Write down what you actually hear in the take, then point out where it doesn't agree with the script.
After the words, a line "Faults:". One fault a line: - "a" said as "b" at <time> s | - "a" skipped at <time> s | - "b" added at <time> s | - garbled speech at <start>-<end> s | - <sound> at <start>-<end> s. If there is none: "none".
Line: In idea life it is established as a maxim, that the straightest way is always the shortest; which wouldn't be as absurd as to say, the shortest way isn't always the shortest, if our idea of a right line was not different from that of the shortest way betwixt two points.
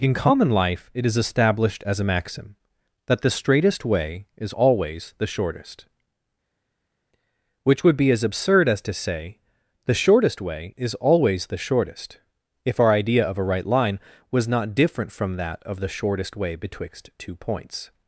In common life it is established as a maxim, that the straightest way is always the shortest; which would be as absurd as to say, the shortest way is always the shortest, if our idea of a right line was not different from that of the shortest way betwixt two points.
Faults:
- "idea" said as "common" at 0.1 s
- "wouldn't" said as "would" at 7.8 s
- "isn't" said as "is" at 10.8 s